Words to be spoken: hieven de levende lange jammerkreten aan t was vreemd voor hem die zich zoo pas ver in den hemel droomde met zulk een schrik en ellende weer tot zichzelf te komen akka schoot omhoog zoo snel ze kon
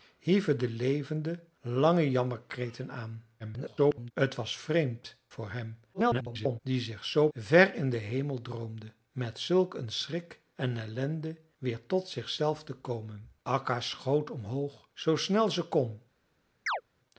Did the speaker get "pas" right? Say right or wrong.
wrong